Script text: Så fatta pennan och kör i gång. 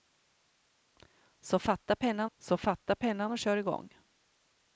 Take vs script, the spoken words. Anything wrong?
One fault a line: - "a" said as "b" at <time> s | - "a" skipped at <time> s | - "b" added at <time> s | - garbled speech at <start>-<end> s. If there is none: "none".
- "så fatta pennan" added at 2.4 s